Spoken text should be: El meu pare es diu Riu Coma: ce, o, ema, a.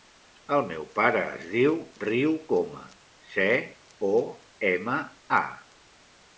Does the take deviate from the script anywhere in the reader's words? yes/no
no